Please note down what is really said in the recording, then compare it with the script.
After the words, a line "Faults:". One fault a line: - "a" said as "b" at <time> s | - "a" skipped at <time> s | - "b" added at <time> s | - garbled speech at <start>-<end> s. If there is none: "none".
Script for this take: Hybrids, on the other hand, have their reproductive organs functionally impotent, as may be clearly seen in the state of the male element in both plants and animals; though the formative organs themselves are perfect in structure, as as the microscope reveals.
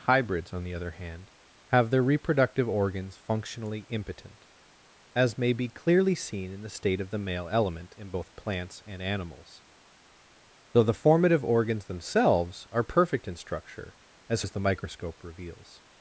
Hybrids, on the other hand, have their reproductive organs functionally impotent, as may be clearly seen in the state of the male element in both plants and animals; though the formative organs themselves are perfect in structure, as as the microscope reveals.
Faults:
none